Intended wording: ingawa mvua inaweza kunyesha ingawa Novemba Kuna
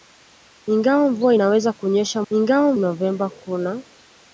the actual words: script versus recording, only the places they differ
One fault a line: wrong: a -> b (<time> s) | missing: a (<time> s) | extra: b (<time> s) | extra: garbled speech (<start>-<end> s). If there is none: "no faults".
no faults